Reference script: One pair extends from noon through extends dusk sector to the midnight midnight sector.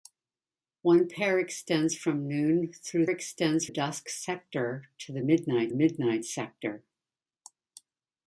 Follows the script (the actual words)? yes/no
yes